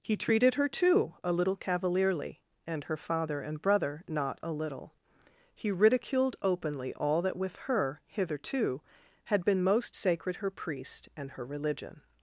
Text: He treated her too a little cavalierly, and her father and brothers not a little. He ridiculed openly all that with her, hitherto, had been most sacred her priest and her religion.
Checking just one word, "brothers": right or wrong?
wrong